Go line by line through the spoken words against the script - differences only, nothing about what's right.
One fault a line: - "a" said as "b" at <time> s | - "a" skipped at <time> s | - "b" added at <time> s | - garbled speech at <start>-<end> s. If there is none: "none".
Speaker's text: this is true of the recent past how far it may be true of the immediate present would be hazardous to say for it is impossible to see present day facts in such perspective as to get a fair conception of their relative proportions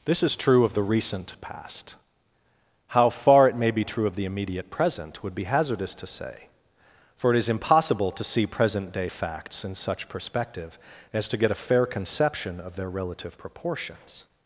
none